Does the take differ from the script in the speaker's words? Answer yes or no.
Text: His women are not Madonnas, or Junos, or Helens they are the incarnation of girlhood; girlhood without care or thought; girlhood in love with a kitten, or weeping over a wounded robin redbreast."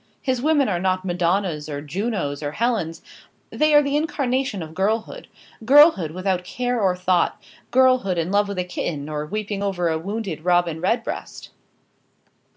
no